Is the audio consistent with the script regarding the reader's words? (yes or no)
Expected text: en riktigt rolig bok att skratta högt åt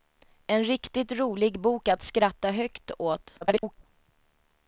no